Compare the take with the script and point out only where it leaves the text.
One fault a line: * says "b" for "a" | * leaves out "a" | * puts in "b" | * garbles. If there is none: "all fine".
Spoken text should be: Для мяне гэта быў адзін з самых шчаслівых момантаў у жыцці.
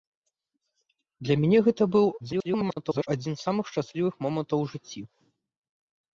* garbles